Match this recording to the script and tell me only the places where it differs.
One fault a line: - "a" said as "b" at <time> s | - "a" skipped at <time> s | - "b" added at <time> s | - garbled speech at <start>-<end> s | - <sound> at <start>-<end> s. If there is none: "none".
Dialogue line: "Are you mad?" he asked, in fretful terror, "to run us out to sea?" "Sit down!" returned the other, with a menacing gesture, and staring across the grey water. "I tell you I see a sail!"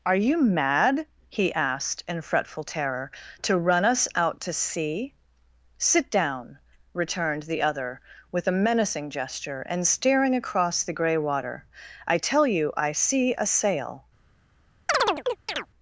- chirp at 14.9-15.7 s